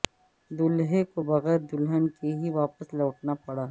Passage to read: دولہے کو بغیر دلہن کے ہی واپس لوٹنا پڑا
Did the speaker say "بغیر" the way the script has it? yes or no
yes